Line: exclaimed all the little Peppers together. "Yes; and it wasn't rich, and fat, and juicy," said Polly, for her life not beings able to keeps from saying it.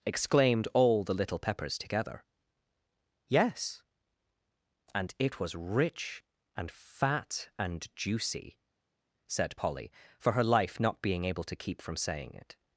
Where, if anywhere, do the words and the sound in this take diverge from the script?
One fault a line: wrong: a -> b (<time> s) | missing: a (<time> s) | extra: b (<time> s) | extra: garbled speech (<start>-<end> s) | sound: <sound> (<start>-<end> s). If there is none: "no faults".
wrong: wasn't -> was (5.4 s)
wrong: beings -> being (11.0 s)
wrong: keeps -> keep (11.6 s)